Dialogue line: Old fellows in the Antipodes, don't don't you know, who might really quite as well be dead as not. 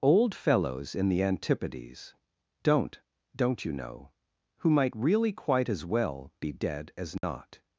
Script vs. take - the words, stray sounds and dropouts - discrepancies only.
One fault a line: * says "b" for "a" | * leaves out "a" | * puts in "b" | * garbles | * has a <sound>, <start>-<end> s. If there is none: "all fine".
* has a dropout, 7.2-7.2 s